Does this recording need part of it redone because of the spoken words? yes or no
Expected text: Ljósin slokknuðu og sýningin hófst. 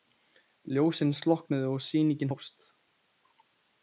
no